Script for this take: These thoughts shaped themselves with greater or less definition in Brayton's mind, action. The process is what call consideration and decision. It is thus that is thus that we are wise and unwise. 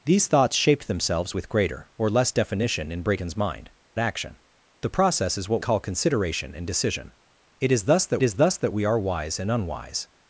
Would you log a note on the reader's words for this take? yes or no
no